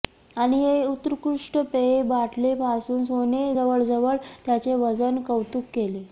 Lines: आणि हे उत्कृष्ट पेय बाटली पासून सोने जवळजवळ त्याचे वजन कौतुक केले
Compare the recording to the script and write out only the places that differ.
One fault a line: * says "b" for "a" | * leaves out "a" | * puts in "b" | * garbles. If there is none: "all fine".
all fine